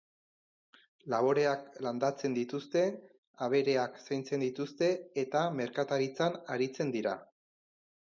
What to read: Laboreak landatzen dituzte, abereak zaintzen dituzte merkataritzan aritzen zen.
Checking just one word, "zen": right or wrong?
wrong